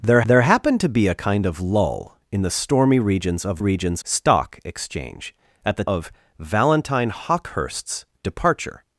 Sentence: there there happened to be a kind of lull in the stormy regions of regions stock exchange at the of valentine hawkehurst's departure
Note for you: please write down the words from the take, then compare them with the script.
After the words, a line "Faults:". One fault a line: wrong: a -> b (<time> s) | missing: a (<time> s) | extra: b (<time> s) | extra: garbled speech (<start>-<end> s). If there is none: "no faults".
there there happened to be a kind of lull in the stormy regions of regions stock exchange at the of valentine hawkehurst's departure
Faults:
no faults